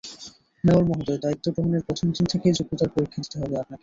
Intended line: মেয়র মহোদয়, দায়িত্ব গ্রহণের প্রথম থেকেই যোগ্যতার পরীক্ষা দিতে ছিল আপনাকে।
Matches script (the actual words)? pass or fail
fail